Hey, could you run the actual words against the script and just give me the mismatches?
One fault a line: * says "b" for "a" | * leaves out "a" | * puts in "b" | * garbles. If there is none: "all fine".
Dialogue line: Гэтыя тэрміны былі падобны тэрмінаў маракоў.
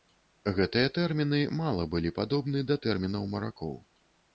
* puts in "мала"
* puts in "да"